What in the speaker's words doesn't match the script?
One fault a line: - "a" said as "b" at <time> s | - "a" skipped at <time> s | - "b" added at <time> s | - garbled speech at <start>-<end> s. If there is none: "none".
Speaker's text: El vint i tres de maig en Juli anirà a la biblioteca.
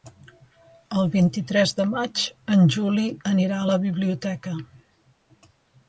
none